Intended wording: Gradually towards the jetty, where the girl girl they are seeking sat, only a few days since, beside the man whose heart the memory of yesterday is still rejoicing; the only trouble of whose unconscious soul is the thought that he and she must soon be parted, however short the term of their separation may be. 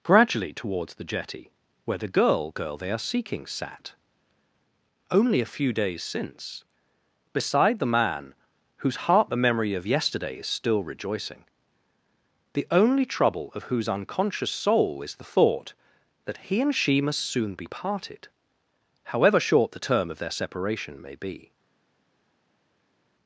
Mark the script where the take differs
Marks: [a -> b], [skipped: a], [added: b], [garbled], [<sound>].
Gradually towards the jetty, where the girl girl they are seeking sat, only a few days since, beside the man whose heart the memory of yesterday is still rejoicing; the only trouble of whose unconscious soul is the thought that he and she must soon be parted, however short the term of their separation may be.